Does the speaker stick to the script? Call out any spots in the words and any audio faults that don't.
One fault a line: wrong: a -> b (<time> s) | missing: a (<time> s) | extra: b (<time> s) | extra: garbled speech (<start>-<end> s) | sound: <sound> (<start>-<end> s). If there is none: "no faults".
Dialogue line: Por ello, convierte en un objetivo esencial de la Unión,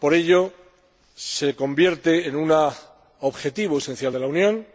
extra: se (1.1 s)